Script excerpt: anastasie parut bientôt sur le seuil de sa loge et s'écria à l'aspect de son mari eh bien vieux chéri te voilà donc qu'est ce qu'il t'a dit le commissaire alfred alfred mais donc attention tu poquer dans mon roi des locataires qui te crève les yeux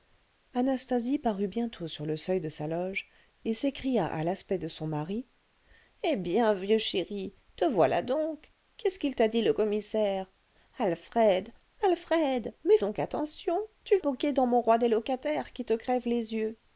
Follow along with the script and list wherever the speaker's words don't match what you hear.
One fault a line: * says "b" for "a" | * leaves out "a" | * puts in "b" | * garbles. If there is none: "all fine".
all fine